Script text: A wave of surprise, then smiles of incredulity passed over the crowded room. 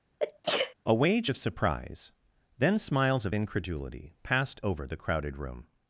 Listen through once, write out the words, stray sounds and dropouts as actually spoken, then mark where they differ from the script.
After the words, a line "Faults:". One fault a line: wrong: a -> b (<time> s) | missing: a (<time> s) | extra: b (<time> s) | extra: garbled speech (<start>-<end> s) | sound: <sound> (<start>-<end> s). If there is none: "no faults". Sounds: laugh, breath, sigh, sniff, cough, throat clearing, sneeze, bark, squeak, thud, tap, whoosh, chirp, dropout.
A wage of surprise, then smiles of incredulity passed over the crowded room.
Faults:
sound: sneeze (0.2-0.7 s)
wrong: wave -> wage (0.9 s)